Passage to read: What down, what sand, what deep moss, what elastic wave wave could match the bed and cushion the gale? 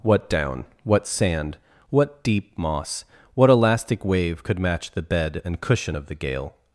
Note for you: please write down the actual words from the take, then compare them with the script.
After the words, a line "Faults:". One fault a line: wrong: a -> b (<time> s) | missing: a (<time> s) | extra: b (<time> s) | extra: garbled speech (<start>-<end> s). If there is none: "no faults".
What down, what sand, what deep moss, what elastic wave could match the bed and cushion of the gale?
Faults:
missing: wave (4.4 s)
extra: of (5.9 s)